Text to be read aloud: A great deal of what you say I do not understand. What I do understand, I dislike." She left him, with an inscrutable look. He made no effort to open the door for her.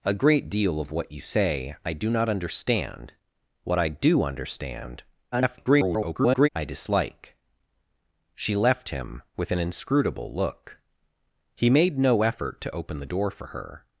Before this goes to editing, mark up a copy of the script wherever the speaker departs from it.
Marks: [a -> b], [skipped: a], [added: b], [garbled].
A great deal of what you say I do not understand. What I do understand, [garbled] I dislike." She left him, with an inscrutable look. He made no effort to open the door for her.